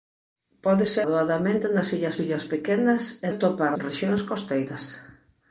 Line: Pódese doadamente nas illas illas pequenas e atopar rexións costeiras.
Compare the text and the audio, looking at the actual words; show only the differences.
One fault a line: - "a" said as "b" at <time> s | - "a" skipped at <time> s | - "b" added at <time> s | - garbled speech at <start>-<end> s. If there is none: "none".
none